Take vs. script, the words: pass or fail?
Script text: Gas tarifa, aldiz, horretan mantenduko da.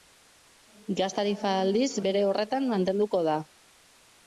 fail